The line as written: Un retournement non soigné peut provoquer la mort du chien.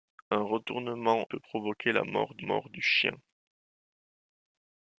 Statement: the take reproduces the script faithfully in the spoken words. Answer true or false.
false